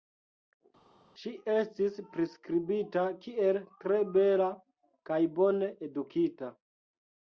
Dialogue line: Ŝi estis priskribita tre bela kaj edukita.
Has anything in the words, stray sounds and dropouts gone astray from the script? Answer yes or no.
yes